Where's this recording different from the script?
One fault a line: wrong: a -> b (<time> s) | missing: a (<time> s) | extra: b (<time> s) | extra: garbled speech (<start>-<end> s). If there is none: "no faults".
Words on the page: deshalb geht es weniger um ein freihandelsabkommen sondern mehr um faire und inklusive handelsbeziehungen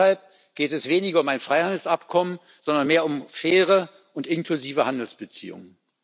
no faults